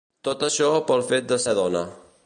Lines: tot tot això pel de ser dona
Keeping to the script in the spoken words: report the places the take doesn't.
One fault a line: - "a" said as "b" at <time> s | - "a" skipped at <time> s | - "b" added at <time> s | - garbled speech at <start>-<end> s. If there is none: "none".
- "tot" skipped at 0.5 s
- "fet" added at 1.1 s